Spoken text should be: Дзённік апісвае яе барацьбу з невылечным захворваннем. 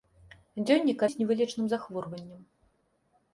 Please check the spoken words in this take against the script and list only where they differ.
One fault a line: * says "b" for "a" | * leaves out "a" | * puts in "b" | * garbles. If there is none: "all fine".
* leaves out "апісвае яе барацьбу"